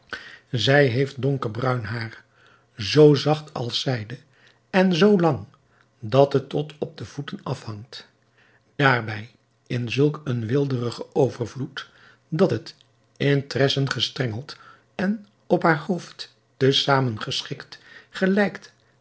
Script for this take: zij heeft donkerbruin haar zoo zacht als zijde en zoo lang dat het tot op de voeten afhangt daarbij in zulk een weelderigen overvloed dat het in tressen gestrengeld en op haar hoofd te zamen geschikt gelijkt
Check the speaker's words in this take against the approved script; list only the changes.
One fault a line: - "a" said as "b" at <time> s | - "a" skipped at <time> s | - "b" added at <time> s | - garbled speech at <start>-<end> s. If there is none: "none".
none